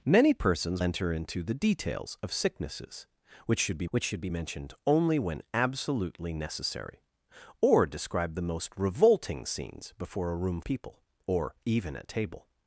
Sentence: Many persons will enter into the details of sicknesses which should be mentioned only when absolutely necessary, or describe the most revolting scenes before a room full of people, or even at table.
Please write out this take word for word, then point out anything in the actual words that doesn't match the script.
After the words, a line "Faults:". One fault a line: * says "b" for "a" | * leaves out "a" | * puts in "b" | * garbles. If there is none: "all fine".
Many persons enter into the details of sicknesses which should be which should be mentioned only when absolutely necessary, or describe the most revolting scenes before a room people, or even at table.
Faults:
* leaves out "will"
* puts in "which should be"
* leaves out "full of"